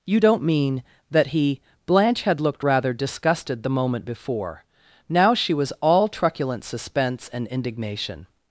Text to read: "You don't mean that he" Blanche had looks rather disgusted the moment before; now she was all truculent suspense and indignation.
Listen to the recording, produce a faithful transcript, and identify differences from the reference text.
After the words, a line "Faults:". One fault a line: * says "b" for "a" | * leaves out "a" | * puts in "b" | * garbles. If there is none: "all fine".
"You don't mean that he" Blanche had looked rather disgusted the moment before; now she was all truculent suspense and indignation.
Faults:
* says "looked" for "looks"